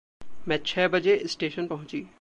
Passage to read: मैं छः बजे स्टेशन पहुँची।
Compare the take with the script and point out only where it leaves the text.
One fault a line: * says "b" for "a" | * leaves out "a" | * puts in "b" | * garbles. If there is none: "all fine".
all fine